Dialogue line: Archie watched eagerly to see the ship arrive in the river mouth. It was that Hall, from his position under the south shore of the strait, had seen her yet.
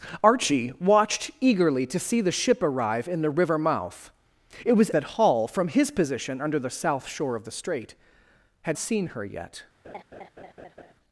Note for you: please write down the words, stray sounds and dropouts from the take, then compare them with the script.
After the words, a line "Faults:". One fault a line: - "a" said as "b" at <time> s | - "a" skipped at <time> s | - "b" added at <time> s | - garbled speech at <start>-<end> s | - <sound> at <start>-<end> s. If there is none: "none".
Archie watched eagerly to see the ship arrive in the river mouth. It was that Hall, from his position under the south shore of the strait, had seen her yet.
Faults:
- laugh at 9.8-10.9 s